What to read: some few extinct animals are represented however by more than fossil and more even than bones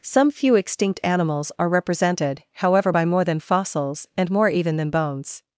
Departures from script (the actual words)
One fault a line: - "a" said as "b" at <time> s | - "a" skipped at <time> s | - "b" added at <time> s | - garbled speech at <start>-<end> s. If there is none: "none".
- "fossil" said as "fossils" at 3.4 s